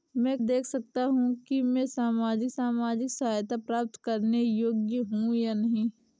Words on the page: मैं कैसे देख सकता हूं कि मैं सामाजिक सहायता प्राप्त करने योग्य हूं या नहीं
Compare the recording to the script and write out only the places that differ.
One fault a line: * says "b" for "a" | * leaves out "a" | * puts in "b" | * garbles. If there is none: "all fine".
* leaves out "कैसे"
* puts in "सामाजिक"